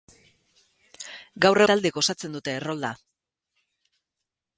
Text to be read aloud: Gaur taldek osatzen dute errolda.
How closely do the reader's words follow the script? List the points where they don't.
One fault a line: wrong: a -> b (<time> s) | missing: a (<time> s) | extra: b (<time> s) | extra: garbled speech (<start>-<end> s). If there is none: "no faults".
no faults